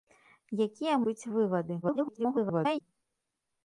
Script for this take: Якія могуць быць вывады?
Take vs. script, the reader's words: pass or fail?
fail